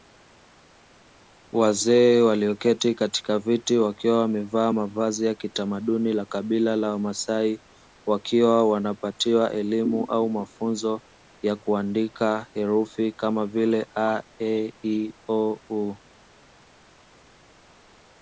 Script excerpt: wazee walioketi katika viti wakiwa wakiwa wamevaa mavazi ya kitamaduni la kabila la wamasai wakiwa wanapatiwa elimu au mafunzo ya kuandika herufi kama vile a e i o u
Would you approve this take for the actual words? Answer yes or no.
no